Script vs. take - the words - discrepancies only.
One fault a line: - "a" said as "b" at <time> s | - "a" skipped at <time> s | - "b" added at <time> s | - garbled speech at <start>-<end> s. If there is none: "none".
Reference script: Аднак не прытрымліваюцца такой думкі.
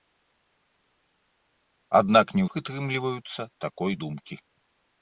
none